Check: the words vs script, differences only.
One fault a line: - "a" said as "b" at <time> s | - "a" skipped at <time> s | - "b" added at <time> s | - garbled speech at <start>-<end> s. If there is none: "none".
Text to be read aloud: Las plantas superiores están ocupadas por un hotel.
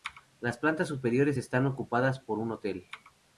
none